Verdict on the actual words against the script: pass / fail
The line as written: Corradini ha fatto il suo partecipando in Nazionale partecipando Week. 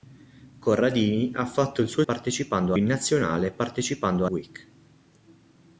pass